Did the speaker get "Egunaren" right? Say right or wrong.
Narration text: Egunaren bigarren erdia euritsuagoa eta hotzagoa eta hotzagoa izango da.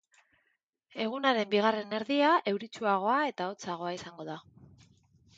right